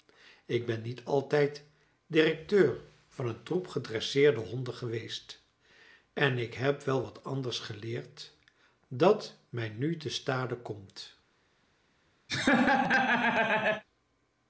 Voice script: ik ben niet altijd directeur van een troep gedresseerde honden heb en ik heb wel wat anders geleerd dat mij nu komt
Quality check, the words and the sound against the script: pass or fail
fail